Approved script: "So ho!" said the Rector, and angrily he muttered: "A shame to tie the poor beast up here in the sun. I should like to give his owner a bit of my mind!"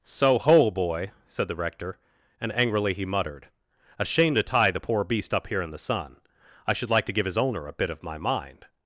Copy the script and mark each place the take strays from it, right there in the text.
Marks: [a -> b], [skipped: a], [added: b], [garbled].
"So ho!" [added: boy] said the Rector, and angrily he muttered: "A shame to tie the poor beast up here in the sun. I should like to give his owner a bit of my mind!"